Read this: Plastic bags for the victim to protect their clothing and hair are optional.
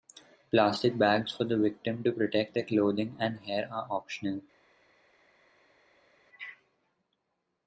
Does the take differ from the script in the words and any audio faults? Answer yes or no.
no